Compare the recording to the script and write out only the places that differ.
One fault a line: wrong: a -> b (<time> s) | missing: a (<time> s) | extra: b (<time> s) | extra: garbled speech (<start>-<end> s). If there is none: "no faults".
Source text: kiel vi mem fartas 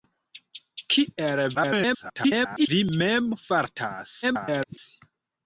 extra: garbled speech (1.5-2.7 s)
extra: garbled speech (4.2-4.8 s)